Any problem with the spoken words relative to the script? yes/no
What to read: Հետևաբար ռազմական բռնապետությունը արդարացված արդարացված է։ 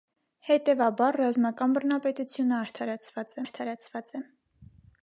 no